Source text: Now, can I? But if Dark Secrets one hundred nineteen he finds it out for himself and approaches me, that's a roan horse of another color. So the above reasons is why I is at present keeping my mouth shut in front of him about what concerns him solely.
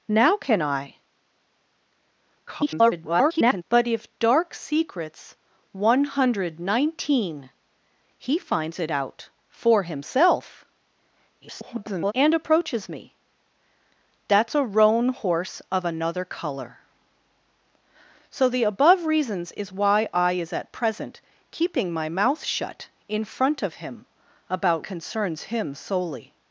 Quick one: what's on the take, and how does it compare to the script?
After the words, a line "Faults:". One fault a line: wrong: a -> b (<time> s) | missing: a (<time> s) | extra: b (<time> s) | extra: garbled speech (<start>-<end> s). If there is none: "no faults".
Now, can I? [garbled] But if Dark Secrets one hundred nineteen he finds it out for himself [garbled] and approaches me, that's a roan horse of another color. So the above reasons is why I is at present keeping my mouth shut in front of him about concerns him solely.
Faults:
extra: garbled speech (2.5-3.6 s)
extra: garbled speech (11.4-12.1 s)
missing: what (24.9 s)